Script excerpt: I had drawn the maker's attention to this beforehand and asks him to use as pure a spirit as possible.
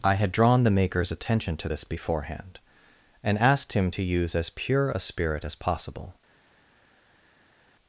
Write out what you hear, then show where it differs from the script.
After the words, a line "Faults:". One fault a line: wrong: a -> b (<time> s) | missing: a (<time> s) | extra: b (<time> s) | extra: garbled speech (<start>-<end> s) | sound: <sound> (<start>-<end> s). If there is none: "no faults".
I had drawn the maker's attention to this beforehand and asked him to use as pure a spirit as possible.
Faults:
wrong: asks -> asked (3.4 s)